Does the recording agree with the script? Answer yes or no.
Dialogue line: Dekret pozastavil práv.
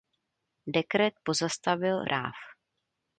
yes